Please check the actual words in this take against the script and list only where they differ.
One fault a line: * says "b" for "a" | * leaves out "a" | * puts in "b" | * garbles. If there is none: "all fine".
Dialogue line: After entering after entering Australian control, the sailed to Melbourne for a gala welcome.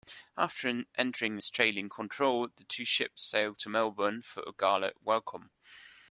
* leaves out "after entering"
* puts in "two ships"